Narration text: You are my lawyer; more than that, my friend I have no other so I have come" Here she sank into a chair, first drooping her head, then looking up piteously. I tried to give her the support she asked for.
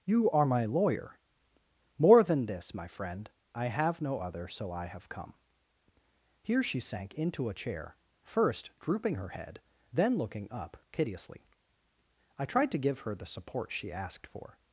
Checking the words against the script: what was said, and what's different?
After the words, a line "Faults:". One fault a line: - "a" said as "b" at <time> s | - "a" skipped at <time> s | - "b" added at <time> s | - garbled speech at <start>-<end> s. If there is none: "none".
You are my lawyer; more than this, my friend I have no other so I have come" Here she sank into a chair, first drooping her head, then looking up piteously. I tried to give her the support she asked for.
Faults:
- "that" said as "this" at 2.5 s